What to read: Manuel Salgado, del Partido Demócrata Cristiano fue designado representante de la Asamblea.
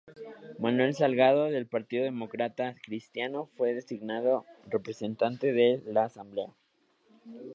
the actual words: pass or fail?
pass